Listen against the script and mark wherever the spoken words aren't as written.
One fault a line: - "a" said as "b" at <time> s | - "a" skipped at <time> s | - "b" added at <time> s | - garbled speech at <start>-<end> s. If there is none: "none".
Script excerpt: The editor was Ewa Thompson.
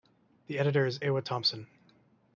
- "was" said as "is" at 0.9 s